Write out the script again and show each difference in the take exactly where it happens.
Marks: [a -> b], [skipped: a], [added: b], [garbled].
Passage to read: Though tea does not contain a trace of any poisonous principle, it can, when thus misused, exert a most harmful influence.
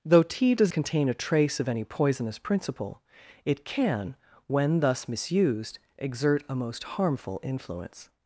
Though tea does [skipped: not] contain a trace of any poisonous principle, it can, when thus misused, exert a most harmful influence.